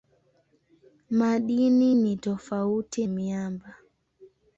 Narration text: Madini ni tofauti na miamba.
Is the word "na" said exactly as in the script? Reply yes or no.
no